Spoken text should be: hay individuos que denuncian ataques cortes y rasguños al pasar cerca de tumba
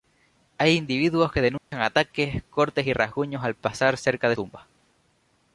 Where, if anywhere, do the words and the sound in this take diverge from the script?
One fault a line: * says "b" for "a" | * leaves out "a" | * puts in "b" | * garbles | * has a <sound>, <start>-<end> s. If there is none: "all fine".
* has a dropout, 1.6-1.7 s